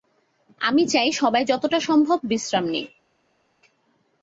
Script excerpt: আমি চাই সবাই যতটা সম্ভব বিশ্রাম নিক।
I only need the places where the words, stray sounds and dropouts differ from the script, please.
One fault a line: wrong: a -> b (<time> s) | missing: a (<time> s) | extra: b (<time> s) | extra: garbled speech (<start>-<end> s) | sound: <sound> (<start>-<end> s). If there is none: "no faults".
no faults